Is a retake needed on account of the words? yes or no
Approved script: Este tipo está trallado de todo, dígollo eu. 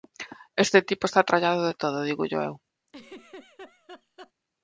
no